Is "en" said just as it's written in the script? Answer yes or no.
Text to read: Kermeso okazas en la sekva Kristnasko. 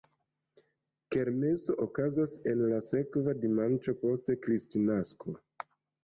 yes